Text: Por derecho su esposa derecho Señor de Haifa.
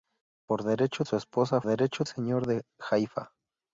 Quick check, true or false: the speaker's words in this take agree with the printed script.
true